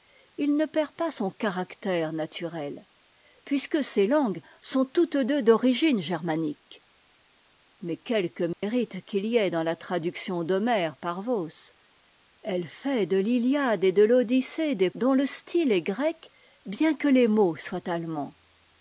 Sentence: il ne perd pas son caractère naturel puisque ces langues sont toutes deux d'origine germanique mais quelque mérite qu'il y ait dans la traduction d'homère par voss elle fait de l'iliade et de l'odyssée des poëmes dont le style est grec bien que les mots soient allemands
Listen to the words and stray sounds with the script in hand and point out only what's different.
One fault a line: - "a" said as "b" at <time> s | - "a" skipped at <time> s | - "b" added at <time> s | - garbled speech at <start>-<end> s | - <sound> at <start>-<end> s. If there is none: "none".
- dropout at 8.5-8.6 s
- "poëmes" skipped at 14.9 s